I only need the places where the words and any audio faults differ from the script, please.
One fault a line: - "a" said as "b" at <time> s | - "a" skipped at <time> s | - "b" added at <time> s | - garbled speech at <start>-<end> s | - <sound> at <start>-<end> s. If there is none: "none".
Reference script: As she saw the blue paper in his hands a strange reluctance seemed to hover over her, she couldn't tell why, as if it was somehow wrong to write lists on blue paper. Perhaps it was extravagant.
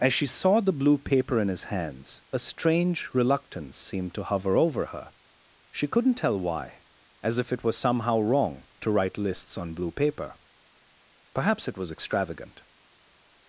none